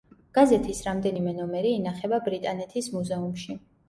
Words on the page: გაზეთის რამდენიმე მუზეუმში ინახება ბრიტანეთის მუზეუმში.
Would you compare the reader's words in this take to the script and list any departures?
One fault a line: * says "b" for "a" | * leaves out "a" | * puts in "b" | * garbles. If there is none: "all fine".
* says "ნომერი" for "მუზეუმში"